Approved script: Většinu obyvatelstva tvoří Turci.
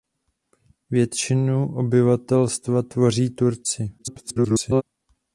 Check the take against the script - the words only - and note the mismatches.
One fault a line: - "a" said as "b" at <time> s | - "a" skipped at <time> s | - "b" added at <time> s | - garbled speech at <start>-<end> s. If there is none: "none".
- garbled speech at 4.0-4.8 s